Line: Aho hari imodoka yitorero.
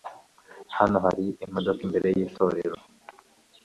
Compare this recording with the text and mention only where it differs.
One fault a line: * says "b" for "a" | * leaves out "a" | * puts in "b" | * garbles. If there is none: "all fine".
* says "Hano" for "Aho"
* puts in "imbere"